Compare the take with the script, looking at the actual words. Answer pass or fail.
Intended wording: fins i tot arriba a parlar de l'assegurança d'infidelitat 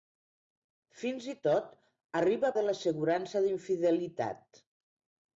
fail